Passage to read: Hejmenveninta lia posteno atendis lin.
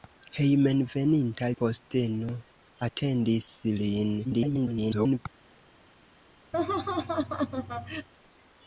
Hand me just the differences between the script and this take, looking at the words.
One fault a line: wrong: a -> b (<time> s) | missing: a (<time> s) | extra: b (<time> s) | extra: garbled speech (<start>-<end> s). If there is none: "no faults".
missing: lia (1.5 s)
extra: garbled speech (4.2-5.2 s)